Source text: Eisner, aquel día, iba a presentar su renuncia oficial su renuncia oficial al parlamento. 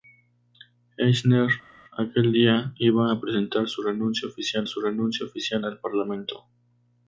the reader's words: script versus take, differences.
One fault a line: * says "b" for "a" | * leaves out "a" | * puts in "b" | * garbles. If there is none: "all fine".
all fine